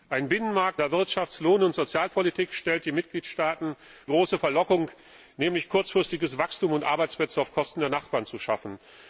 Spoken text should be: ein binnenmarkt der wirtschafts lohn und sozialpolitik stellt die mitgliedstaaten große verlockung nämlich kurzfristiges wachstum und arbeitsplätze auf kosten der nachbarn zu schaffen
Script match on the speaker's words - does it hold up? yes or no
yes